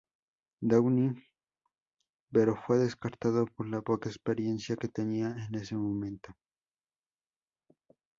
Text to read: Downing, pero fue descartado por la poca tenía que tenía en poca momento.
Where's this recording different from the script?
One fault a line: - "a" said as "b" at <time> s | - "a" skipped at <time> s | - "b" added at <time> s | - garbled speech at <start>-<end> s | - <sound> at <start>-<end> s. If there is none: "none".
- "tenía" said as "experiencia" at 4.1 s
- "poca" said as "ese" at 5.5 s